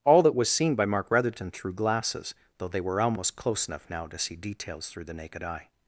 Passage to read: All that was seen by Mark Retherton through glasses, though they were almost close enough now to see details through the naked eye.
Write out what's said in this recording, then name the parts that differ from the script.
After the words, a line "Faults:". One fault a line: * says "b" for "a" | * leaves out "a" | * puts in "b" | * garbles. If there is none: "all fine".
All that was seen by Mark Retherton through glasses, though they were almost close enough now to see details through the naked eye.
Faults:
all fine